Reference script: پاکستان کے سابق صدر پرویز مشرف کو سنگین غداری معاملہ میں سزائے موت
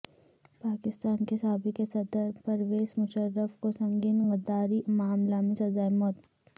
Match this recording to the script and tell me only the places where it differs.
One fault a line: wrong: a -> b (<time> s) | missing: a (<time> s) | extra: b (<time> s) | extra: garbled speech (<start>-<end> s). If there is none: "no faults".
no faults